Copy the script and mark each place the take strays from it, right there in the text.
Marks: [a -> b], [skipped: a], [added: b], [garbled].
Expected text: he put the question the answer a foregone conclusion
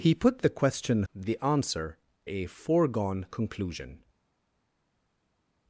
he put the question the answer a foregone conclusion